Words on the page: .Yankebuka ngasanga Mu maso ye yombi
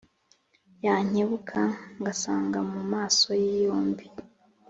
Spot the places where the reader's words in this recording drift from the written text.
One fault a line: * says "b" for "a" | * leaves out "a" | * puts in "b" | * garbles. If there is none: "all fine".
all fine